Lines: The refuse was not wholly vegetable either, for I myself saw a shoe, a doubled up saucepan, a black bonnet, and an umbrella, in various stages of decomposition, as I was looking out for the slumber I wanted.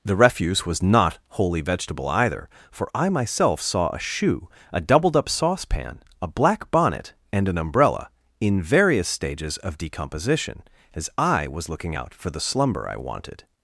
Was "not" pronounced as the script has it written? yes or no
yes